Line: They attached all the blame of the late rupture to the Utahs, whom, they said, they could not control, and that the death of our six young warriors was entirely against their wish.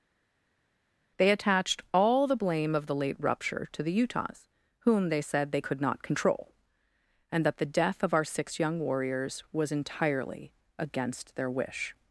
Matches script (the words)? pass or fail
pass